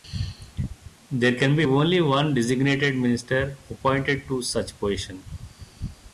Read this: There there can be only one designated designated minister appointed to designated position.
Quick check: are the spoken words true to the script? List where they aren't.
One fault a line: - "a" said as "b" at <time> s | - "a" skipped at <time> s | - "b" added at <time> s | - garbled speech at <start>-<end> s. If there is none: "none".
- "there" skipped at 1.4 s
- "designated" skipped at 3.0 s
- "designated" said as "such" at 4.4 s